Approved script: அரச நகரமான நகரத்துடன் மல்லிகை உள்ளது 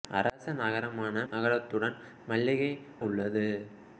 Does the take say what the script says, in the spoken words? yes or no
yes